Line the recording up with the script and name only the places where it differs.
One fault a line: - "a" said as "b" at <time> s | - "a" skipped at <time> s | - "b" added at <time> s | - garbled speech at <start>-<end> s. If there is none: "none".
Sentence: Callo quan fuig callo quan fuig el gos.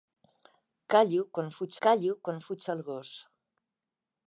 none